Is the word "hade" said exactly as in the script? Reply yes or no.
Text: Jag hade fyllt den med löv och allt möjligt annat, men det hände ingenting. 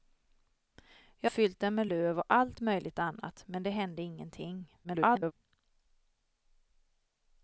no